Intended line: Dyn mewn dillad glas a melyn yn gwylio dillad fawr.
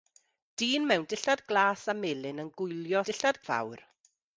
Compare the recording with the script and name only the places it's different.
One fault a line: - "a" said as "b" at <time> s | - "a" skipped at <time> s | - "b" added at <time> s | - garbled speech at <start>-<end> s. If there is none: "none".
none